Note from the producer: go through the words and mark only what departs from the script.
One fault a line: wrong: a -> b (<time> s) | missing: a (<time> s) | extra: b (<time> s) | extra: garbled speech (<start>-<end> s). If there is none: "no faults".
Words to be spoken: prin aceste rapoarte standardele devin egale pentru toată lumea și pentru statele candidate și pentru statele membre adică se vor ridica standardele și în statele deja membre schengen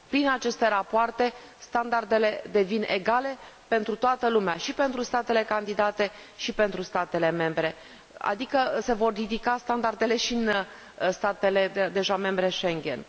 no faults